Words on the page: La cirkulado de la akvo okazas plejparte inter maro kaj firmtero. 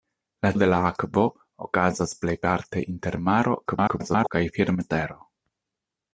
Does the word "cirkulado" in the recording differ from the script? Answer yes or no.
yes